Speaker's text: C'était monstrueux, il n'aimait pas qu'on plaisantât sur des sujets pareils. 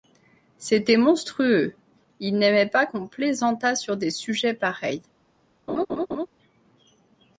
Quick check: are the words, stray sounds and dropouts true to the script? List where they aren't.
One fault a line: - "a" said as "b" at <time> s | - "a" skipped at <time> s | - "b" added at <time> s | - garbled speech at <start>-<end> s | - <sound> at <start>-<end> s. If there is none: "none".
- laugh at 5.7-6.3 s